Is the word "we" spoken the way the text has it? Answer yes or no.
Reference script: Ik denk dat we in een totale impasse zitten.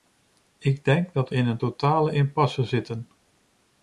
no